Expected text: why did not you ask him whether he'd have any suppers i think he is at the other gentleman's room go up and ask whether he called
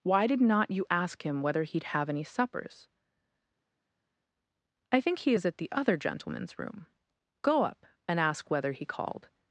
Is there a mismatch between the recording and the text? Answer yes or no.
no